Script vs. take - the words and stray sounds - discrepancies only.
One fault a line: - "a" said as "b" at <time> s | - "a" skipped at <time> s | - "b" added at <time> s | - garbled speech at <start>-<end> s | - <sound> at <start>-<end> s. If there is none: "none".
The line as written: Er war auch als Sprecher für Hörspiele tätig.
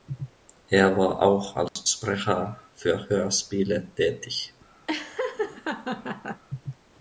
- dropout at 1.7-1.8 s
- laugh at 4.9-6.4 s